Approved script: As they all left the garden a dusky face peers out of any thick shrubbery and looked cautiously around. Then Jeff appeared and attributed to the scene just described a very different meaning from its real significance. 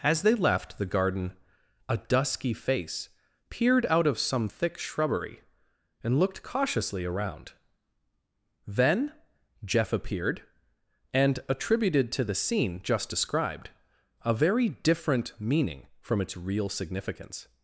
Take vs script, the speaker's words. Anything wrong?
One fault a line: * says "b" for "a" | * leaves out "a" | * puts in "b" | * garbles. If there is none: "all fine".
* leaves out "all"
* says "peered" for "peers"
* says "some" for "any"